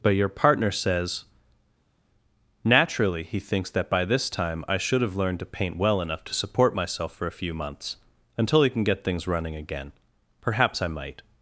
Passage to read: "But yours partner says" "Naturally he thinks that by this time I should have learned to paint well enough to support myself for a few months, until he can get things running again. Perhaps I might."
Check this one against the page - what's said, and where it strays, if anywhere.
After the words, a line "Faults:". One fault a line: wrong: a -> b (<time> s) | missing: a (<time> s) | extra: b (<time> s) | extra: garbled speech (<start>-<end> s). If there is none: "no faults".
"But your partner says" "Naturally he thinks that by this time I should have learned to paint well enough to support myself for a few months, until he can get things running again. Perhaps I might."
Faults:
wrong: yours -> your (0.1 s)